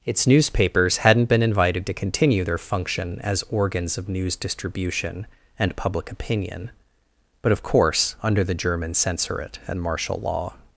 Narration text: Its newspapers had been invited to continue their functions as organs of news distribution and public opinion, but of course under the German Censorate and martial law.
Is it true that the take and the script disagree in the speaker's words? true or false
true